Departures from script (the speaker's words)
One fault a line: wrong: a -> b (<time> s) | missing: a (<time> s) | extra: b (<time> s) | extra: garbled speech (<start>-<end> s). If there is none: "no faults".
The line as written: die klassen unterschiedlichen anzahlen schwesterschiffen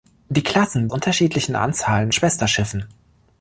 no faults